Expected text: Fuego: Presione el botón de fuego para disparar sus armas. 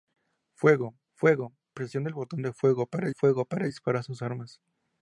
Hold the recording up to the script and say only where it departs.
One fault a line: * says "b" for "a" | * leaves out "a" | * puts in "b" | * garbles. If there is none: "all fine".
* puts in "fuego"
* puts in "fuego para"